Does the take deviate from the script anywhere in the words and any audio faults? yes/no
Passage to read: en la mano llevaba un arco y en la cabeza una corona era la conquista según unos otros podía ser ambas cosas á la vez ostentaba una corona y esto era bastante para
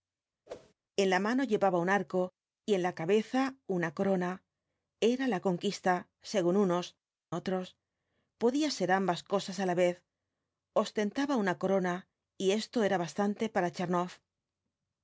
yes